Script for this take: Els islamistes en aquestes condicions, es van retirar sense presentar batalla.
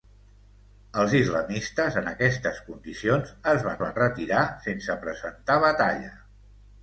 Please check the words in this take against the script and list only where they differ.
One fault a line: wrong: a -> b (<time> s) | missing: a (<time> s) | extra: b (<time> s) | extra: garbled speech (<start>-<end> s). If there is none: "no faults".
extra: van (3.8 s)